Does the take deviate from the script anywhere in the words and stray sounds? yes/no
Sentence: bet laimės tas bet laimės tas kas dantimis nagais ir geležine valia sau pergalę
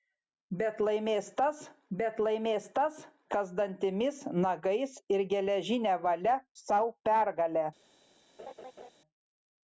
yes